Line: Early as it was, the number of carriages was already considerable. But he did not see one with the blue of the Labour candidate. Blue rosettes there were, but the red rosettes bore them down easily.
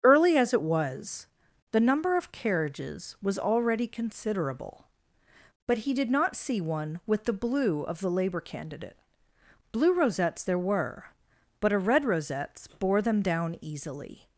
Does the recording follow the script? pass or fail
fail